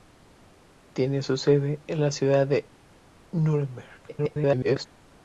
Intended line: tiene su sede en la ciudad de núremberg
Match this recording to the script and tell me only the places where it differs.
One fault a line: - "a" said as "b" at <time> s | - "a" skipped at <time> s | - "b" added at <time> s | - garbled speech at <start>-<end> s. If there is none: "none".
- garbled speech at 4.1-4.9 s